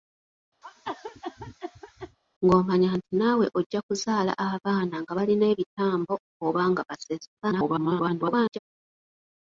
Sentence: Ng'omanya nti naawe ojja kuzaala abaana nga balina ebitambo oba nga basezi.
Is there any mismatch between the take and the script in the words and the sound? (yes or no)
yes